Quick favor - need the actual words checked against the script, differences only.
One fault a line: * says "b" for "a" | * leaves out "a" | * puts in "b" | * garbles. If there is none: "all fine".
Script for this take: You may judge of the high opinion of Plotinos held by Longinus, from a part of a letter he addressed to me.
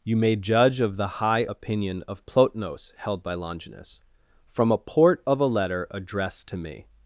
* says "port" for "part"
* leaves out "he"